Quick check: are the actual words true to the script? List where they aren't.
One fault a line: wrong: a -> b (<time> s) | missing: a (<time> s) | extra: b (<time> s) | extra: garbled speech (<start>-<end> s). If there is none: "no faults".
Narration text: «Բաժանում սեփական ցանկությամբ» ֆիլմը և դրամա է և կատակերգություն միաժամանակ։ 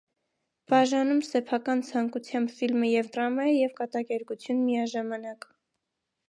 no faults